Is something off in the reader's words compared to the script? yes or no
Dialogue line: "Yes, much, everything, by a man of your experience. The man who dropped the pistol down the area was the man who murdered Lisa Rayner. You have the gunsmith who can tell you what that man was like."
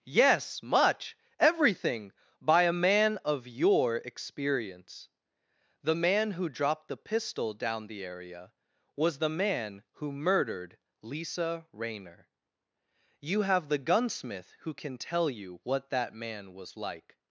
no